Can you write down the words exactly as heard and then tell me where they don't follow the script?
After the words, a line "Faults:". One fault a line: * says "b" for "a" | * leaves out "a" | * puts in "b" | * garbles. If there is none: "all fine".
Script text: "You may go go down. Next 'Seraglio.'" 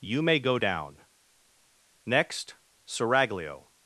"You may go down. Next 'Seraglio.'"
Faults:
* leaves out "go"